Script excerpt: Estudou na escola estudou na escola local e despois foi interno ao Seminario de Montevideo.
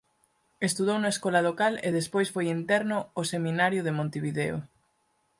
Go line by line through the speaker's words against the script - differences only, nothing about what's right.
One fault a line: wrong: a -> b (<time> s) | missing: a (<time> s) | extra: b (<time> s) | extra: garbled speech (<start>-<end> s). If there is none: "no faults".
missing: estudou na escola (1.4 s)